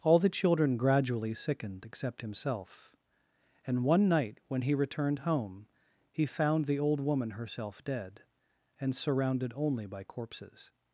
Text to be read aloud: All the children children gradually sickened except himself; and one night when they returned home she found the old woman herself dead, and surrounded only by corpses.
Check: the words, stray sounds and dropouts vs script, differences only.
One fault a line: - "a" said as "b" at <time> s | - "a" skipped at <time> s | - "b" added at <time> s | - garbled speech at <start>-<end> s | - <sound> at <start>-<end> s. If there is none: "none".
- "children" skipped at 0.8 s
- "they" said as "he" at 4.6 s
- "she" said as "he" at 6.1 s